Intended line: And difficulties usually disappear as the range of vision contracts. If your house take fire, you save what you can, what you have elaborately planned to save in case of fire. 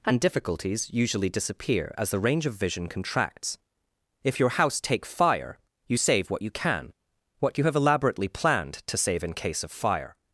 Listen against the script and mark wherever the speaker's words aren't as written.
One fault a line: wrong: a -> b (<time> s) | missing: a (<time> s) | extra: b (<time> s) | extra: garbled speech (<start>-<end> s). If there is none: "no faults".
no faults